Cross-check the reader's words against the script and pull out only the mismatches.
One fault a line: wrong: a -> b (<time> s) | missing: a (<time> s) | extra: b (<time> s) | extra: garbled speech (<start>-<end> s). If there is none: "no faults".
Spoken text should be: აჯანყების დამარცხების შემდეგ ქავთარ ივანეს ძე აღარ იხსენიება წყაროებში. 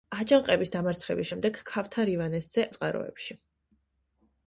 missing: აღარ იხსენიება (2.6 s)